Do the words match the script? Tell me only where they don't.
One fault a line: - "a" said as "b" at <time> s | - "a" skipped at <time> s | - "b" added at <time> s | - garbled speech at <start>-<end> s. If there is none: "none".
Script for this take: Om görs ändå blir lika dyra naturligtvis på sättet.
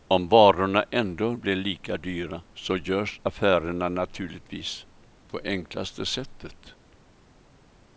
- "görs" said as "varorna" at 0.3 s
- "så görs affärerna" added at 2.5 s
- "enklaste" added at 5.4 s